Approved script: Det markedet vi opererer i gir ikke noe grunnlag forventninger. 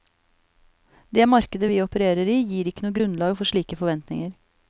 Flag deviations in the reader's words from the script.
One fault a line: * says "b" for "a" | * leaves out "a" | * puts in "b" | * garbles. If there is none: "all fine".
* puts in "for slike"